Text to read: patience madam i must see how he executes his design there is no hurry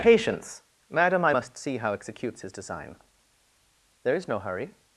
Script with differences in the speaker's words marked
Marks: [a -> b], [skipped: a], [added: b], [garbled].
patience madam i must see how [skipped: he] executes his design there is no hurry